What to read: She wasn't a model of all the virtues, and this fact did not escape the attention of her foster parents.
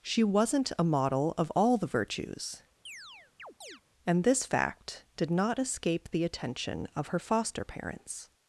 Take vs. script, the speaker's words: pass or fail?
pass